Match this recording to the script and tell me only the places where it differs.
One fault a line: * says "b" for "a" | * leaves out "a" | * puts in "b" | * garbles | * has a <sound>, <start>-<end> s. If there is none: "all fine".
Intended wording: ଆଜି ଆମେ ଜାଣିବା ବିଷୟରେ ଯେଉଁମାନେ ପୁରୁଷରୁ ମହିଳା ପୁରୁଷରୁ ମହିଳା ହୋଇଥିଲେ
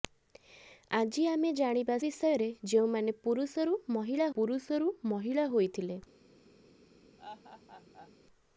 * has a laugh, 7.2-8.1 s